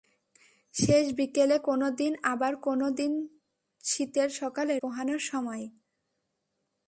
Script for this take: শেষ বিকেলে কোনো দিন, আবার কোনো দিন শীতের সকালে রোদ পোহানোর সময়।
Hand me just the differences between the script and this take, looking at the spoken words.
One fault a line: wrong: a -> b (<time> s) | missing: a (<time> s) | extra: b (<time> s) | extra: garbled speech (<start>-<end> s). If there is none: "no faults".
missing: রোদ (4.7 s)